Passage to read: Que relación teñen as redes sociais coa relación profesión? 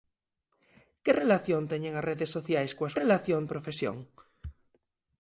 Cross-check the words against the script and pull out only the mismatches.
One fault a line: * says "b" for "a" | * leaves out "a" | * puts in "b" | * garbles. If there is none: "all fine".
all fine